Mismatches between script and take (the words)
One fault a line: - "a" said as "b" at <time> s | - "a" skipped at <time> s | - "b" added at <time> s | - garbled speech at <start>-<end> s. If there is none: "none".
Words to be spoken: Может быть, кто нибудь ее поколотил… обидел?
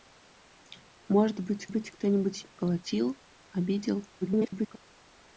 - "быть" added at 1.7 s
- "ее" skipped at 2.4 s
- garbled speech at 4.2-4.8 s